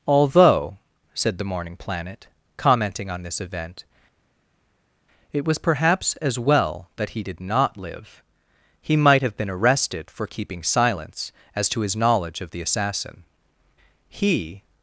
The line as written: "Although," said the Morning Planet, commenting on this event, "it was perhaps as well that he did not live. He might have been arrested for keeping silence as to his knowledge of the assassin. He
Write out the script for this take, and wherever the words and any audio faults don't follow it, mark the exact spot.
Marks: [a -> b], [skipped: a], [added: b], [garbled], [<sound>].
"Although," said the Morning Planet, commenting on this event, "it was perhaps as well that he did not live. He might have been arrested for keeping silence as to his knowledge of the assassin. He